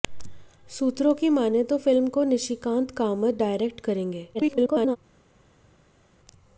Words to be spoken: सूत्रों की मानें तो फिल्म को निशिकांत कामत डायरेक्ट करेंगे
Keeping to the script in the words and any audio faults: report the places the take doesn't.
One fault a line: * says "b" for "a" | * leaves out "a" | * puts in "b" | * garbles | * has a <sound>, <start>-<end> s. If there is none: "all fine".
* garbles